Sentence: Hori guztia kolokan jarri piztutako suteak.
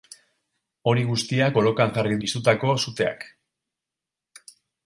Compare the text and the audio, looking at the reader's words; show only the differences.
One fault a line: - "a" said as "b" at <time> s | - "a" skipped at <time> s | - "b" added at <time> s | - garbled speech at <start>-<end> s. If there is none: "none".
none